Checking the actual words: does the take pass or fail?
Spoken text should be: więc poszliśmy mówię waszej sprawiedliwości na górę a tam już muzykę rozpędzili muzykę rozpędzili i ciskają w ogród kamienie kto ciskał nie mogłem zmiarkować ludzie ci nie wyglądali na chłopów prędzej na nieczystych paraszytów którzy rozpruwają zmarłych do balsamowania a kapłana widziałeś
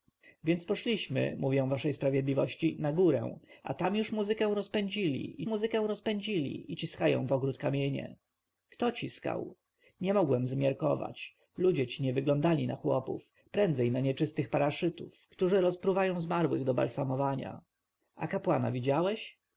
pass